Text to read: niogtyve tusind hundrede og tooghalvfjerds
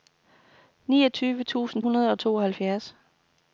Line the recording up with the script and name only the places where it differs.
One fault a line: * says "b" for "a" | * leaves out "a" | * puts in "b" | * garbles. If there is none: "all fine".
all fine